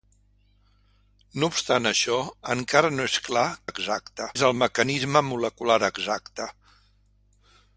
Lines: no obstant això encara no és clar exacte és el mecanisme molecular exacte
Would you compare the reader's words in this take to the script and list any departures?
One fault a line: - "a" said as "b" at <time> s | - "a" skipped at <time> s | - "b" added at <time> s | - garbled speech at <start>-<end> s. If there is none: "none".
none